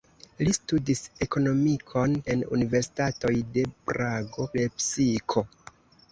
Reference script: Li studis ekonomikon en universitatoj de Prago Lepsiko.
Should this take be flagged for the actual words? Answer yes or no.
no